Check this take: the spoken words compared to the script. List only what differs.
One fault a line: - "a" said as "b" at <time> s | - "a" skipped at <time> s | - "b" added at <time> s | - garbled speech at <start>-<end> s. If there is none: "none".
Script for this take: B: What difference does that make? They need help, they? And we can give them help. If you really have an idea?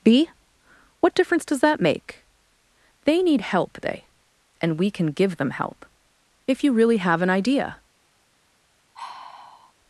none